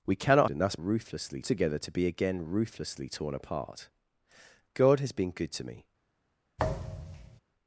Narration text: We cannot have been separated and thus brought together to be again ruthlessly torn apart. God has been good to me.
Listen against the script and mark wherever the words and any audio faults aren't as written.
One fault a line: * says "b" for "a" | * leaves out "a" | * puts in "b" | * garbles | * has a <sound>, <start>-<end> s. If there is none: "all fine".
* leaves out "have been separated"
* says "ruthlessly" for "brought"
* has a thud, 6.6-7.4 s